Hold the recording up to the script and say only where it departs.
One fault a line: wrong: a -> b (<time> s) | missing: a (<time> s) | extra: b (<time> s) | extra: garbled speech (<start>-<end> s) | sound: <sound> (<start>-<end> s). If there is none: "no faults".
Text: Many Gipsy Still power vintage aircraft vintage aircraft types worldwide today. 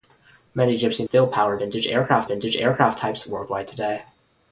no faults